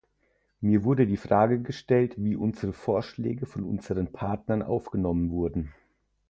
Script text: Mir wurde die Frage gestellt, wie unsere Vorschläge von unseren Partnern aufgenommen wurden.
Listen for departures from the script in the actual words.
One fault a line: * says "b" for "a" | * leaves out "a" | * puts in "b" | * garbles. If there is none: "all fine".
all fine